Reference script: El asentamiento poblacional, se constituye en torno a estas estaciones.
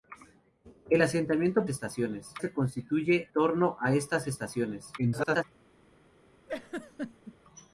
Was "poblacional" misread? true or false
true